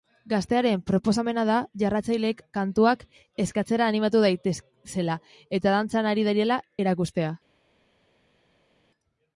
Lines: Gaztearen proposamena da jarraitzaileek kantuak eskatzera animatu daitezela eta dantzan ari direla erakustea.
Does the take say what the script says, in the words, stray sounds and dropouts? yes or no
yes